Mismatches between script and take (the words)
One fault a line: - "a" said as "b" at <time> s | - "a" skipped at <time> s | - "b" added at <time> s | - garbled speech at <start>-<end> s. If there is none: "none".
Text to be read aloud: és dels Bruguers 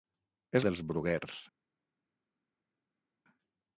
none